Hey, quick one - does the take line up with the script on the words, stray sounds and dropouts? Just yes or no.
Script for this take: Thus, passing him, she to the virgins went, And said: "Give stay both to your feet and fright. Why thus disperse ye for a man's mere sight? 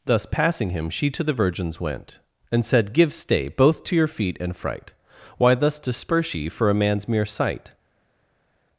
yes